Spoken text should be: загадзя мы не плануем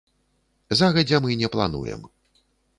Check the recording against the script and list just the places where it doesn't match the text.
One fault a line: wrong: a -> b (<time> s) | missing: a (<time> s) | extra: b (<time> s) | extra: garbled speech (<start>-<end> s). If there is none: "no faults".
no faults